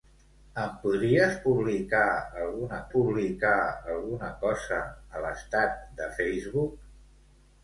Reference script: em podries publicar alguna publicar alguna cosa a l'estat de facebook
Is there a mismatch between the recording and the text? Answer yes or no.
no